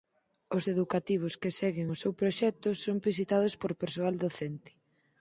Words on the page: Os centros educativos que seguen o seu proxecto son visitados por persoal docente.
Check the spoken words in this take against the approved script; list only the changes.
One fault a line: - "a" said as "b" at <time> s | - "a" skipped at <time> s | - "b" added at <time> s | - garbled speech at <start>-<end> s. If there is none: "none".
- "centros" skipped at 0.6 s